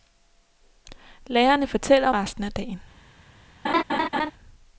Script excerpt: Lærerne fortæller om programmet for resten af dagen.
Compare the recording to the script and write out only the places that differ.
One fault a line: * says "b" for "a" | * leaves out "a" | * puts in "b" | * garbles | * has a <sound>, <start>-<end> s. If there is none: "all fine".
* leaves out "om programmet for"
* has a laugh, 3.6-4.3 s